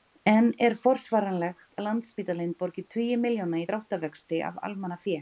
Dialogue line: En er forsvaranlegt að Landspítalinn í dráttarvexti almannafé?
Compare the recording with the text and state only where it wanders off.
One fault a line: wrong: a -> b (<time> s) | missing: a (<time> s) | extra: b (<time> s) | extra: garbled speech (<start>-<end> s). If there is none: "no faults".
extra: borgi tugi milljóna (2.6 s)
extra: af (4.5 s)